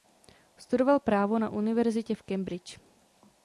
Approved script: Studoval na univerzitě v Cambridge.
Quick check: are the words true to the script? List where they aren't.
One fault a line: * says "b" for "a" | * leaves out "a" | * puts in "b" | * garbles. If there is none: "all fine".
* puts in "právo"